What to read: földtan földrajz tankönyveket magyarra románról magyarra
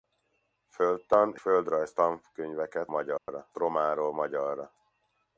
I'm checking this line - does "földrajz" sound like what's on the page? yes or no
yes